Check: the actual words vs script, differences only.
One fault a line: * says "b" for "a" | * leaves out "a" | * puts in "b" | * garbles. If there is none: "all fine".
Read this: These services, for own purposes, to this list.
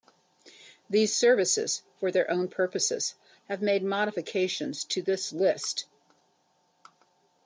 * puts in "their"
* puts in "have made modifications"